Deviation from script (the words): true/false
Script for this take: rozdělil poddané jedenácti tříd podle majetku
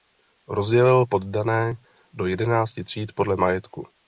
true